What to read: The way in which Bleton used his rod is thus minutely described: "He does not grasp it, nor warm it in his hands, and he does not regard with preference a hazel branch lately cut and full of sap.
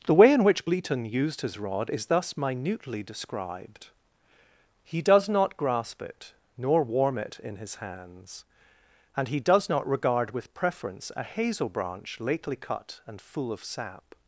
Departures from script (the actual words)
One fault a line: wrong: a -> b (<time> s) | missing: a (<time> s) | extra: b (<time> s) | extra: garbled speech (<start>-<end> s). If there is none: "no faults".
no faults